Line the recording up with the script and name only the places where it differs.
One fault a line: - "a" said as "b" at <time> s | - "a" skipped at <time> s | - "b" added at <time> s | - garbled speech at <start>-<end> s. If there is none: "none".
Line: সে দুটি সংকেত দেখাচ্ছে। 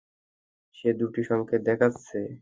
none